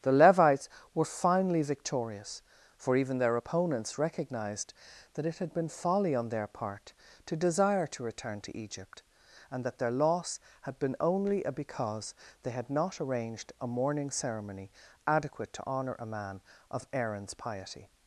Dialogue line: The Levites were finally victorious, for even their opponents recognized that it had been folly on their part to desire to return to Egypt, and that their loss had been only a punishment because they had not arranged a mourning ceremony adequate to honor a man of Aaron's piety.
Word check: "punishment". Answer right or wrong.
wrong